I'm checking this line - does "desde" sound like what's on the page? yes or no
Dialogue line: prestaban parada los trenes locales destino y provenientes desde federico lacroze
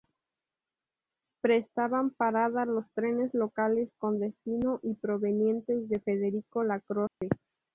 no